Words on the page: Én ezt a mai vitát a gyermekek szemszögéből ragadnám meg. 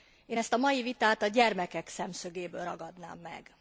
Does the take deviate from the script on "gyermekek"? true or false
false